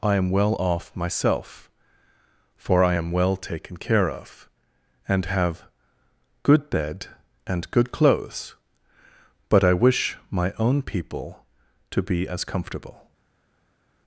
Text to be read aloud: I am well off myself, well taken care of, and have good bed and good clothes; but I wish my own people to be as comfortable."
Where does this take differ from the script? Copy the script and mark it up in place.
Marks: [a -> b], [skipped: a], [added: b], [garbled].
I am well off myself, [added: for I am] well taken care of, and have good bed and good clothes; but I wish my own people to be as comfortable."